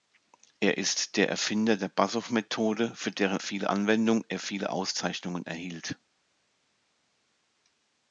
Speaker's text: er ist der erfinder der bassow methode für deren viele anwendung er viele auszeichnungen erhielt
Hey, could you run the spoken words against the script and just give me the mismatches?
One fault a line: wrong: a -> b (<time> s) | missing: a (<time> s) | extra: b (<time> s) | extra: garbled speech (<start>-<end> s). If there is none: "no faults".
no faults